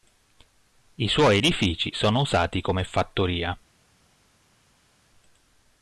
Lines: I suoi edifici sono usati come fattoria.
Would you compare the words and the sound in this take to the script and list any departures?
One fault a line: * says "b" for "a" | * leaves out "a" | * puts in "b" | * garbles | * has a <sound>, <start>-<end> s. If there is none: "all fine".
all fine